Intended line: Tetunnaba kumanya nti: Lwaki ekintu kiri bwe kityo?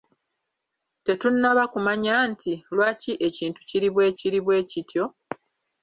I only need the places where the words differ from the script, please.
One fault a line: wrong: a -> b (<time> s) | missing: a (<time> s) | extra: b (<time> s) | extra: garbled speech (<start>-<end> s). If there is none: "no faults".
extra: kiri bwe (4.2 s)